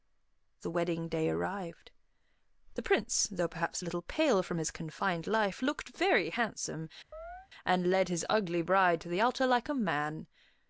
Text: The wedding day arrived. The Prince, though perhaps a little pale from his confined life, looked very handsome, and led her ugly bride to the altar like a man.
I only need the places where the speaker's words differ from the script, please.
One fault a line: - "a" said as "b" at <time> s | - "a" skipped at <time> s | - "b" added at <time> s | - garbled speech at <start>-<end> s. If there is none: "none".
- "her" said as "his" at 8.1 s